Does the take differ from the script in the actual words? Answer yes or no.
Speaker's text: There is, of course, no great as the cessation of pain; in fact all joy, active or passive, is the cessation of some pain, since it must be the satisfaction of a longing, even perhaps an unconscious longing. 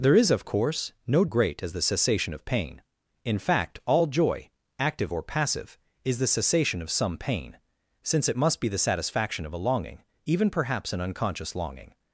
no